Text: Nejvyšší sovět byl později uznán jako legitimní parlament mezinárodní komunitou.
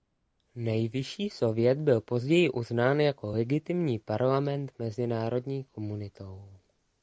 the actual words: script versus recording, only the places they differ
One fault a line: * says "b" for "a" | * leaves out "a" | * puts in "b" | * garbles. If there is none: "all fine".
all fine